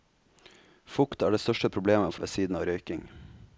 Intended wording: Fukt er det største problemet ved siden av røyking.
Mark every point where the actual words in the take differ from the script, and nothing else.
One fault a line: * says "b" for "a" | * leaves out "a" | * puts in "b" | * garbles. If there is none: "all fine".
all fine